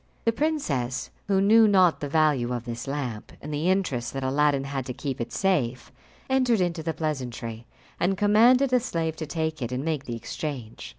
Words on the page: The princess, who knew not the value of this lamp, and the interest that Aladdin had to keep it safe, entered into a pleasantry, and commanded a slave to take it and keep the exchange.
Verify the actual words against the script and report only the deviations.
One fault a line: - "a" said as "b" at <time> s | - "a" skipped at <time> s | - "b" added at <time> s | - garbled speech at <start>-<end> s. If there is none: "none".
- "a" said as "the" at 6.8 s
- "keep" said as "make" at 9.8 s